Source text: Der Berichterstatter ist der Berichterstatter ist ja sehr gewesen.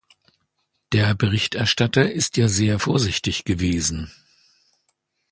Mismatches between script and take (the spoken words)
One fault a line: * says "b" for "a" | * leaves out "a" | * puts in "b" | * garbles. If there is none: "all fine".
* leaves out "der Berichterstatter ist"
* puts in "vorsichtig"